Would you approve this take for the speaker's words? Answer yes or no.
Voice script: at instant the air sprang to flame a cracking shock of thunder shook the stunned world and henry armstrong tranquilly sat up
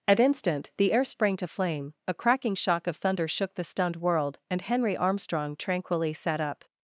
yes